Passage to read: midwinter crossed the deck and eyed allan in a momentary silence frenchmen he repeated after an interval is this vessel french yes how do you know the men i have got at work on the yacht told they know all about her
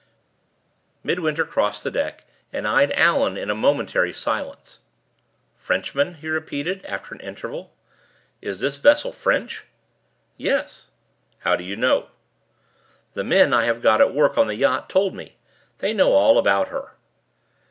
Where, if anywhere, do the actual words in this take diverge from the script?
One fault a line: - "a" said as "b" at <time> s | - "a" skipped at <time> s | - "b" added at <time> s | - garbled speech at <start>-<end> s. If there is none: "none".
- "me" added at 15.1 s